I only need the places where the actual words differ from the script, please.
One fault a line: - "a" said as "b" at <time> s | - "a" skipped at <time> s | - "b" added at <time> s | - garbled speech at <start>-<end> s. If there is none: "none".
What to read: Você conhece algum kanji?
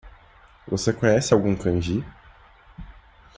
none